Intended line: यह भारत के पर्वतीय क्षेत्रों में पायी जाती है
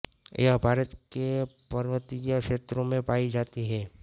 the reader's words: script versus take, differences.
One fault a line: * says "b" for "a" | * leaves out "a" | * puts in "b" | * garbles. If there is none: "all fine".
all fine